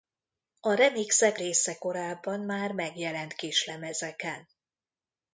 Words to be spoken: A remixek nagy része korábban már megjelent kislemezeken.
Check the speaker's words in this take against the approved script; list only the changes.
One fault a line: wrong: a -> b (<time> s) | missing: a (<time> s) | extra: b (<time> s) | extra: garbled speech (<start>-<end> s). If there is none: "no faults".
missing: nagy (1.4 s)